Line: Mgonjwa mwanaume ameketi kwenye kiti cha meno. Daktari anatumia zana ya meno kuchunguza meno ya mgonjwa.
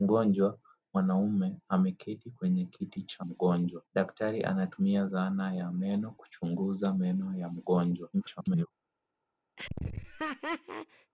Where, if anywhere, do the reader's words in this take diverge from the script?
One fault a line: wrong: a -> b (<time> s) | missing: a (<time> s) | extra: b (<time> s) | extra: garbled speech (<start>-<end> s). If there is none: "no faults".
wrong: meno -> mgonjwa (3.2 s)
extra: garbled speech (8.1-8.7 s)